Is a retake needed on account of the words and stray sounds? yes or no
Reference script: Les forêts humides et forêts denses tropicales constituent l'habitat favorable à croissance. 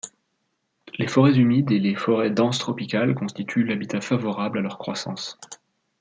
yes